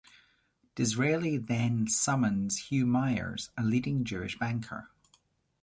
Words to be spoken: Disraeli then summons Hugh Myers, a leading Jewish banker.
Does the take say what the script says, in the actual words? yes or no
yes